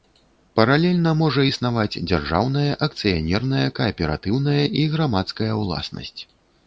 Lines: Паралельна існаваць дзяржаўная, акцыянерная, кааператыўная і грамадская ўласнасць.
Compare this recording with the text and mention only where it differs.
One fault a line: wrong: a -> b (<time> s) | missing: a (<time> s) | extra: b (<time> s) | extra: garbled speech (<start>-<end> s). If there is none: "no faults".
extra: можа (1.2 s)